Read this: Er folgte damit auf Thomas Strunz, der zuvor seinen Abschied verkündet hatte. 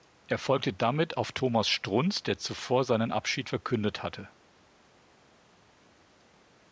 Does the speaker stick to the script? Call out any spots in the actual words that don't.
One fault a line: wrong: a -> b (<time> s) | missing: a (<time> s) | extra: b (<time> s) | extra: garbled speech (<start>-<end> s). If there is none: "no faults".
no faults